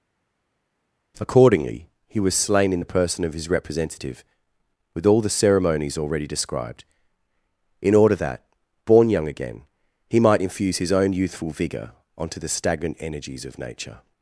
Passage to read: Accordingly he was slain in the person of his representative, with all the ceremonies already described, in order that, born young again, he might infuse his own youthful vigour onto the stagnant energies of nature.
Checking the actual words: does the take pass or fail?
pass